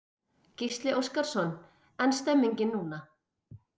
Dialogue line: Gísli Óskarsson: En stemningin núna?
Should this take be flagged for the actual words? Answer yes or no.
no